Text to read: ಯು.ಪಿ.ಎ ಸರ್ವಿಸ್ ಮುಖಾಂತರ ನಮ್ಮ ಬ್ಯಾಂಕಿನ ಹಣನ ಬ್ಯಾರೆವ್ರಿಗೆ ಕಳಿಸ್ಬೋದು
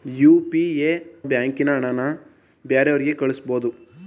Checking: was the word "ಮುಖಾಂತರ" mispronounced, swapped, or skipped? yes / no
yes